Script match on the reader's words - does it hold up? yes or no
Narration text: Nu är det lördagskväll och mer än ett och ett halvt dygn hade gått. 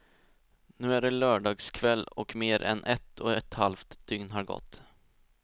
no